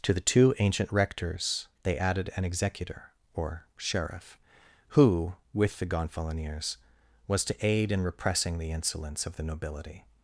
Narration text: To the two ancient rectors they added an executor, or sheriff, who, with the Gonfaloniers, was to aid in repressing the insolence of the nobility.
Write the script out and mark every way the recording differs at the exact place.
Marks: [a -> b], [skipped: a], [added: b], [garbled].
To the two ancient rectors they added an executor, or sheriff, who, with the Gonfaloniers, was to aid in repressing the insolence of the nobility.